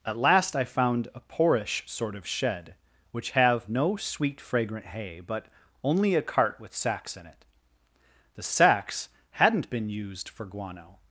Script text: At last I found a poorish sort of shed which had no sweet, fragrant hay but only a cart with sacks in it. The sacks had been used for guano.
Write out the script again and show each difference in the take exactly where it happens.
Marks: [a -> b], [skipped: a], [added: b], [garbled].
At last I found a poorish sort of shed which [had -> have] no sweet, fragrant hay but only a cart with sacks in it. The sacks [had -> hadn't] been used for guano.